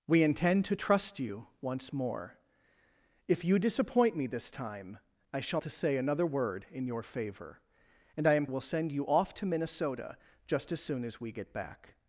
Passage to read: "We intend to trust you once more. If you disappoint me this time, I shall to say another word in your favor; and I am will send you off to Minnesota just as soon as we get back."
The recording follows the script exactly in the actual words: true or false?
true